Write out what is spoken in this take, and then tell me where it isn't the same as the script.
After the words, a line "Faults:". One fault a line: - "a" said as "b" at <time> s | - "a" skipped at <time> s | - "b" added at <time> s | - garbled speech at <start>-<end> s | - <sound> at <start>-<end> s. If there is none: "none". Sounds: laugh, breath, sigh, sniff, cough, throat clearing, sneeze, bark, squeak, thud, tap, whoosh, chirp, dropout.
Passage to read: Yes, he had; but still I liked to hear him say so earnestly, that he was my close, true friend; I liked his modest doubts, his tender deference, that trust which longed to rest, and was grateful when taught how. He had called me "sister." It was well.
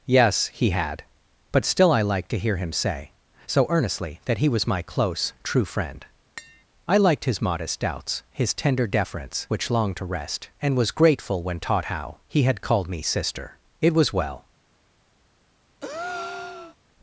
Yes, he had; but still I liked to hear him say so earnestly, that he was my close, true friend; I liked his modest doubts, his tender deference, which longed to rest, and was grateful when taught how. He had called me "sister." It was well.
Faults:
- tap at 6.4-6.6 s
- "that trust" skipped at 9.5 s
- breath at 15.8-16.8 s